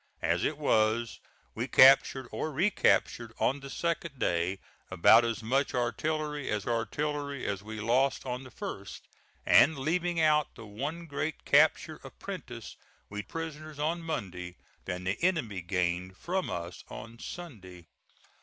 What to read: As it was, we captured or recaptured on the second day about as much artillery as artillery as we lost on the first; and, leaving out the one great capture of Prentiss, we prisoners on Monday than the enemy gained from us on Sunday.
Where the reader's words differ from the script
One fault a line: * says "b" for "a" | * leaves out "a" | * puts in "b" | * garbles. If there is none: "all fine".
all fine